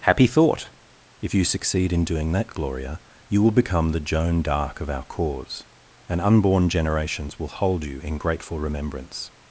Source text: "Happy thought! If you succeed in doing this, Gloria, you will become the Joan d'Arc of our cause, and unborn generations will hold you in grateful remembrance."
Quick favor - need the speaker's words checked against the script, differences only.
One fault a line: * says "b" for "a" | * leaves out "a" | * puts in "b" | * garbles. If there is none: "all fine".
* says "that" for "this"